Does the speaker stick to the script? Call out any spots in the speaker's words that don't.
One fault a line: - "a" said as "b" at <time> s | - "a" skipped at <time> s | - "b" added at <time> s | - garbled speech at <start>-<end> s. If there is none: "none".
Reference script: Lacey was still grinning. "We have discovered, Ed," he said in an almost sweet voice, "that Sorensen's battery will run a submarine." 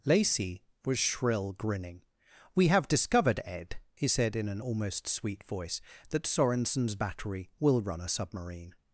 - "still" said as "shrill" at 1.0 s